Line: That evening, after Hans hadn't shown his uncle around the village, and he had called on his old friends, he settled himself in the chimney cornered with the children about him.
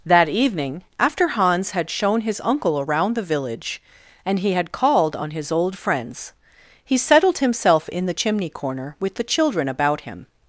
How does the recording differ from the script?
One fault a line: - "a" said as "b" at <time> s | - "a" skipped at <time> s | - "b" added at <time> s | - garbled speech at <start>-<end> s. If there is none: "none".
- "hadn't" said as "had" at 1.7 s
- "cornered" said as "corner" at 8.5 s